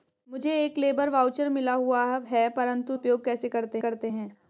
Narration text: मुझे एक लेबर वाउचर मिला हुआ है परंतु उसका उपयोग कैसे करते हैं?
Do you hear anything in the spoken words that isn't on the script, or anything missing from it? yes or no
yes